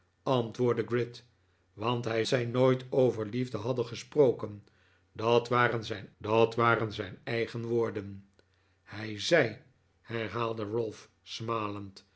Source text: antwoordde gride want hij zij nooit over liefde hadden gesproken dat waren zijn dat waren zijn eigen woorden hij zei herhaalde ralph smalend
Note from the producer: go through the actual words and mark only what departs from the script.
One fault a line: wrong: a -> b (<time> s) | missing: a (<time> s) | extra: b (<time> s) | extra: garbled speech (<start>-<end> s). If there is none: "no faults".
no faults